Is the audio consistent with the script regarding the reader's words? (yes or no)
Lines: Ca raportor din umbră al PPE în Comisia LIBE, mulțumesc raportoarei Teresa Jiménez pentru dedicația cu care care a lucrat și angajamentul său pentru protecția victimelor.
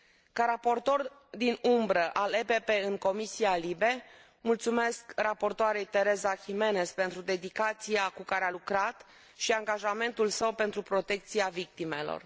no